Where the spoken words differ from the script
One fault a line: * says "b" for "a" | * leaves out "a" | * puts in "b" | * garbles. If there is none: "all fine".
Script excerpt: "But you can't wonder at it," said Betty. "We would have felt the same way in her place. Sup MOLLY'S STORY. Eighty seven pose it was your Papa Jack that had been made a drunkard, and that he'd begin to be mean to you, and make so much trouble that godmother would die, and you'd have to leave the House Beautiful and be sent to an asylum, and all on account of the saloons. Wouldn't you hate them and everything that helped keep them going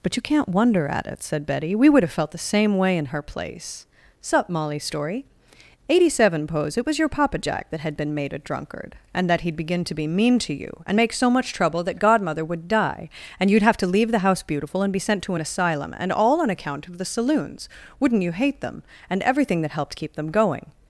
all fine